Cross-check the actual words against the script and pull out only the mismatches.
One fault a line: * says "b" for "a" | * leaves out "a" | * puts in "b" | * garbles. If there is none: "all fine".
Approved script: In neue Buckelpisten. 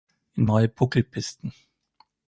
all fine